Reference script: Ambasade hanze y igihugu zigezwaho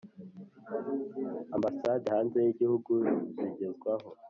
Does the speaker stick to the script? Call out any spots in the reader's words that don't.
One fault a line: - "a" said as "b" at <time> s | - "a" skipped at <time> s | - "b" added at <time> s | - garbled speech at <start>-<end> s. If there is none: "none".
none